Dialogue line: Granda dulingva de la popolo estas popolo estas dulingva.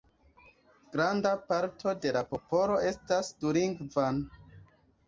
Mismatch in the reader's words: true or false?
true